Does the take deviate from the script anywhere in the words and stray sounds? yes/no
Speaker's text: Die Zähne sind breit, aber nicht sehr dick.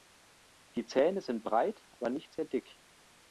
yes